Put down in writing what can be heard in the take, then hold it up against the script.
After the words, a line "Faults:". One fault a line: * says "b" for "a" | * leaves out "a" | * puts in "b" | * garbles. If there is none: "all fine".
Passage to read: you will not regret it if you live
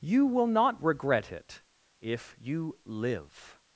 you will not regret it if you live
Faults:
all fine